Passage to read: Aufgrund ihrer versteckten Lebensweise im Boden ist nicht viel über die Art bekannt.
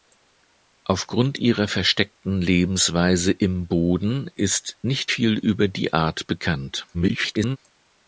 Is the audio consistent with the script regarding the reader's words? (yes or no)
no